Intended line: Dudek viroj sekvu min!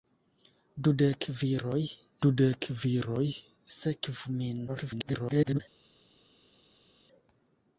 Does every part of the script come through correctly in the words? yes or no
no